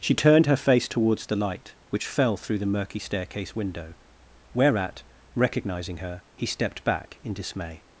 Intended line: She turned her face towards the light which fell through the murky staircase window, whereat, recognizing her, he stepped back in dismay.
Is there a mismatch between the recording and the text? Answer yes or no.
no